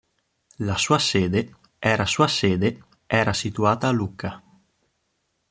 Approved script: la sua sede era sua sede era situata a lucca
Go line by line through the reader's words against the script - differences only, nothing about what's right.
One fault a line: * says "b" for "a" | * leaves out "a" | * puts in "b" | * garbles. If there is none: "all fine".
all fine